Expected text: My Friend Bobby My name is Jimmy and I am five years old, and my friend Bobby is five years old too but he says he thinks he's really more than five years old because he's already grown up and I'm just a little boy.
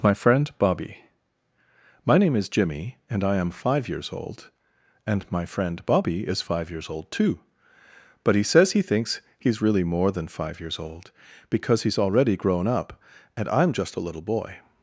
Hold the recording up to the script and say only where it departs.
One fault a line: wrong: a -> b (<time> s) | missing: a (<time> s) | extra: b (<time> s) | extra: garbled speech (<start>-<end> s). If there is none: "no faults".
no faults